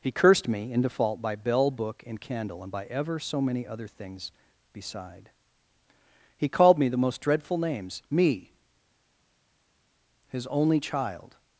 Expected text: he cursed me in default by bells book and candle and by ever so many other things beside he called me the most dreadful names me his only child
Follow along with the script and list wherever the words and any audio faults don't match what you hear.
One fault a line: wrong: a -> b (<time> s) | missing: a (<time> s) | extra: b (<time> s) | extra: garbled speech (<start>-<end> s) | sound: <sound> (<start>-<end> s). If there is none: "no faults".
wrong: bells -> bell (1.4 s)